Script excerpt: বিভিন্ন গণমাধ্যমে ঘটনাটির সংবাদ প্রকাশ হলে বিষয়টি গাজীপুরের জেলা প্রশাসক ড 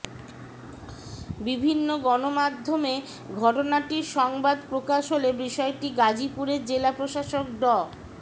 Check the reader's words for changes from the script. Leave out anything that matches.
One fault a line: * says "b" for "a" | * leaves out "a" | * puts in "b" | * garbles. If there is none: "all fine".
all fine